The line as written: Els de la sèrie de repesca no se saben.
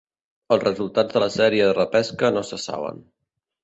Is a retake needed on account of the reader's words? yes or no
yes